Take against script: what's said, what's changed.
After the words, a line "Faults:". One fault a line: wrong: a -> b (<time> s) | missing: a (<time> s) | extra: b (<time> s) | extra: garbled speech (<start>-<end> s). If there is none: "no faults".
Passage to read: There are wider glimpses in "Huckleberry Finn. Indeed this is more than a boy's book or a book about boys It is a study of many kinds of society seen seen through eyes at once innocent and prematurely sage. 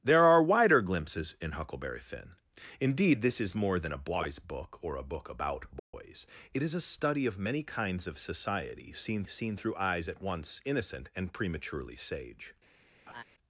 There are wider glimpses in "Huckleberry Finn. Indeed this is more than a boy's book or a book about boys It is a study of many kinds of society seen seen through eyes at once innocent and prematurely sage.
Faults:
no faults